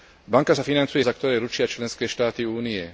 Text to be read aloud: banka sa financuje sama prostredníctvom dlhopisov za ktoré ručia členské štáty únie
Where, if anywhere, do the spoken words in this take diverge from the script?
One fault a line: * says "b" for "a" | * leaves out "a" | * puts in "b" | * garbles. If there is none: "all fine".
* leaves out "sama prostredníctvom dlhopisov"